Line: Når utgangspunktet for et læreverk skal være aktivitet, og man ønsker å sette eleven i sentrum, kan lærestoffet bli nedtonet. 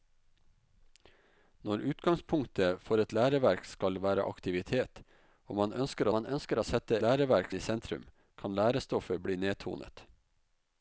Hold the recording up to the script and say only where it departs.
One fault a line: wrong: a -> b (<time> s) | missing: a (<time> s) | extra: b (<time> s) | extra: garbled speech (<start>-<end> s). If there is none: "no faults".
extra: man ønsker (6.1 s)
wrong: eleven -> læreverk (7.0 s)